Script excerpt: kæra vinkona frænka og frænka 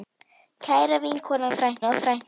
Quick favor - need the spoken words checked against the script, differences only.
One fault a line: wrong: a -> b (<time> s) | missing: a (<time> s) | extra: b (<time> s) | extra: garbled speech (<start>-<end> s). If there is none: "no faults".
no faults